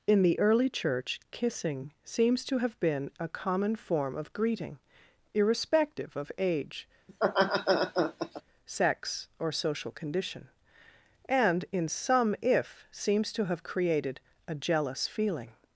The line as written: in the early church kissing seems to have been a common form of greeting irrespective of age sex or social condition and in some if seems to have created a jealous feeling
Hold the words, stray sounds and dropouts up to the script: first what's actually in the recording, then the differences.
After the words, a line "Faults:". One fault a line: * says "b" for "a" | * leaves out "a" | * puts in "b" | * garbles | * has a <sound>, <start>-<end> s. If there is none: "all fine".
in the early church kissing seems to have been a common form of greeting irrespective of age sex or social condition and in some if seems to have created a jealous feeling
Faults:
* has a laugh, 7.1-8.4 s